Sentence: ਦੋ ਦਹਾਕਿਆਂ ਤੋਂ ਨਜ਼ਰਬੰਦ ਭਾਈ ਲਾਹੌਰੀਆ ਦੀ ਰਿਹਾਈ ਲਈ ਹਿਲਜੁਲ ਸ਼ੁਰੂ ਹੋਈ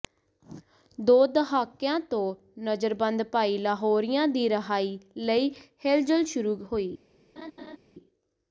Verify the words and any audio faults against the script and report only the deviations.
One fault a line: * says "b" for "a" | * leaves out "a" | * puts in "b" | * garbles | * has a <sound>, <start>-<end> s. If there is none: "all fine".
* has a laugh, 7.4-7.8 s